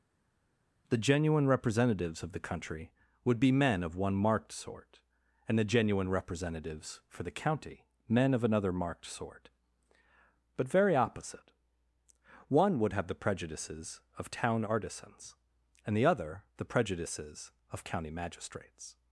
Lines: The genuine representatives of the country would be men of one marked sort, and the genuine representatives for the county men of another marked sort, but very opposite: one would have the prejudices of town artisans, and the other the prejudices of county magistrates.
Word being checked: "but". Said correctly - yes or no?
yes